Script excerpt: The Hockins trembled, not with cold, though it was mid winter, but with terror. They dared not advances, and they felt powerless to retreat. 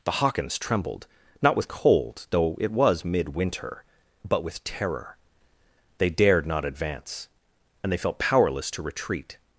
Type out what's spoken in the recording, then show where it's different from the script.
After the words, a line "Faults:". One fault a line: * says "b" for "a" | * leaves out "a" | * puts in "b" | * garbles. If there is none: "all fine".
The Hockins trembled, not with cold, though it was mid winter, but with terror. They dared not advance, and they felt powerless to retreat.
Faults:
* says "advance" for "advances"